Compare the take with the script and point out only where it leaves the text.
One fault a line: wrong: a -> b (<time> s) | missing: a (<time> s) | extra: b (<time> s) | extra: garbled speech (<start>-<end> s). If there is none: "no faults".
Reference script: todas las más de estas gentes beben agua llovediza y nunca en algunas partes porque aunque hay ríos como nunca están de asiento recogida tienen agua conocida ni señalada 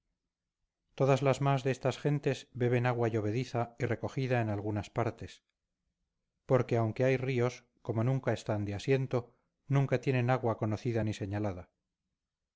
wrong: nunca -> recogida (3.8 s)
wrong: recogida -> nunca (9.7 s)